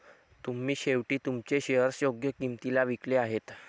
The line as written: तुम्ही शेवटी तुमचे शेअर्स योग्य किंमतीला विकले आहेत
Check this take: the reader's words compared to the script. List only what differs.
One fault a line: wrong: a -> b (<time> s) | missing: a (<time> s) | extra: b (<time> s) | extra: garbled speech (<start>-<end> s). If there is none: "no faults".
no faults